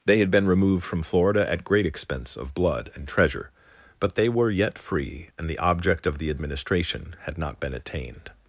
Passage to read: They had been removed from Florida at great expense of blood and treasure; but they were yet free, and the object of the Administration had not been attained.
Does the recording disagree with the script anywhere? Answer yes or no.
no